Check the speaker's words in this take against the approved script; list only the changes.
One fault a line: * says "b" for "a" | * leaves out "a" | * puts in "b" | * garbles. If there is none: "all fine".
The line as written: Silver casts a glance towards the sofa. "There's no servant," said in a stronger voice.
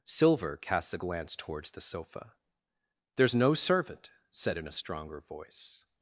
all fine